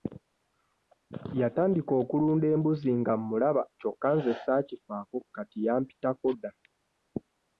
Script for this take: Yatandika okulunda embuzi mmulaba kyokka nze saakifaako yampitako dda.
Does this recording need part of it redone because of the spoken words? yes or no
yes